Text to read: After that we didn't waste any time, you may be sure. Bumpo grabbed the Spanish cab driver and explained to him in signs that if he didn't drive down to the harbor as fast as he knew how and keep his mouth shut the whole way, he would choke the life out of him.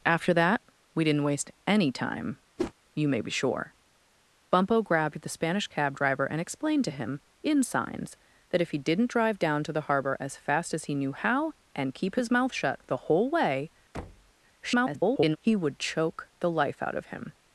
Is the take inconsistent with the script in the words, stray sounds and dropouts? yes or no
yes